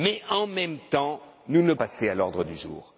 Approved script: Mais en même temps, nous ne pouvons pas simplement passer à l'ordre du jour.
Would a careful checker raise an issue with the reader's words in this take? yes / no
yes